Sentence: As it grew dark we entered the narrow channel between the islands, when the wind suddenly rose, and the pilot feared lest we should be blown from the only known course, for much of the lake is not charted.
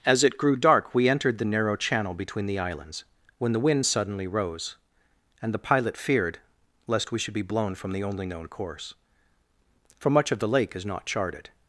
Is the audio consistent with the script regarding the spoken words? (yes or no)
yes